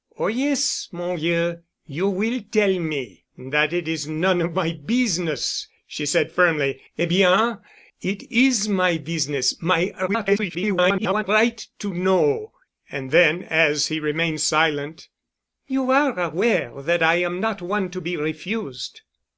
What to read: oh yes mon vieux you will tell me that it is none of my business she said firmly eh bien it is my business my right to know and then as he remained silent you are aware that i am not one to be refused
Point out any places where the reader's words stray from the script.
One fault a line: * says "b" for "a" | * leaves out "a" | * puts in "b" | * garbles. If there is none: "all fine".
* garbles